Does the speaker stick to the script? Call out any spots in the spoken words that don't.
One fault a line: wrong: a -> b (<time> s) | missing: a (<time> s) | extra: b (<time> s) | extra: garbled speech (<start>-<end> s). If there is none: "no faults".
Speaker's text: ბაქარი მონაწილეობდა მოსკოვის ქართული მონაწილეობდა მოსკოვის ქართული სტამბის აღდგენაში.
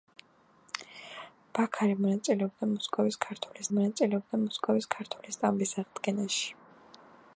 no faults